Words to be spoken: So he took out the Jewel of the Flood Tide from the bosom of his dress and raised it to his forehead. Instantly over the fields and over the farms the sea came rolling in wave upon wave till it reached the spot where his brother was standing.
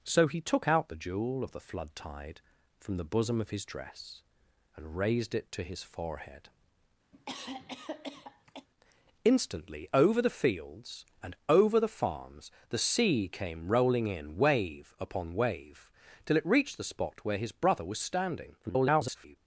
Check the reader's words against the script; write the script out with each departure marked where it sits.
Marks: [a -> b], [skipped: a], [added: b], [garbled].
So he took out the Jewel of the Flood Tide from the bosom of his dress and raised it to his forehead. Instantly over the fields and over the farms the sea came rolling in wave upon wave till it reached the spot where his brother was standing. [garbled]